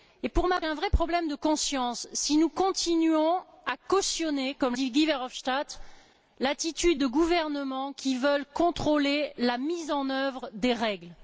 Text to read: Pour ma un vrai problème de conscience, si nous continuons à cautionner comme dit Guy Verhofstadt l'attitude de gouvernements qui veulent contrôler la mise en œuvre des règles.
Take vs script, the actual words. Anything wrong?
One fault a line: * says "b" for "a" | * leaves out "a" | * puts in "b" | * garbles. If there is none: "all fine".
all fine